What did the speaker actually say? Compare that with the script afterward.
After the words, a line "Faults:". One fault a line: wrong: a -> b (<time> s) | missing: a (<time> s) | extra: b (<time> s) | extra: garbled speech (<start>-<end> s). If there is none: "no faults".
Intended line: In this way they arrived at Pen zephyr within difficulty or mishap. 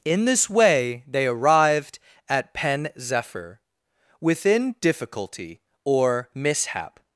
In this way they arrived at Pen zephyr within difficulty or mishap.
Faults:
no faults